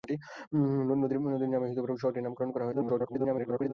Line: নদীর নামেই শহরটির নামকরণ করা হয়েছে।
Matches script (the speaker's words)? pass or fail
fail